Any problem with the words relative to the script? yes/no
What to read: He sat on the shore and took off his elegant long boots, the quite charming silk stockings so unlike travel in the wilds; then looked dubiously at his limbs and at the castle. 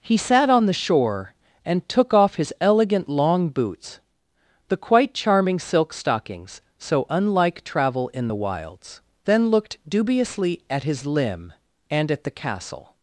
yes